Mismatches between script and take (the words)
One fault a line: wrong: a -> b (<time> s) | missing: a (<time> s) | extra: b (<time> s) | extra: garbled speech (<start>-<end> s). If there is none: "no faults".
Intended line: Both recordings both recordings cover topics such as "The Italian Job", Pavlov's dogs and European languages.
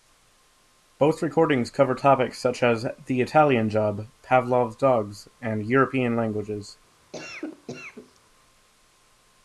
missing: both recordings (1.7 s)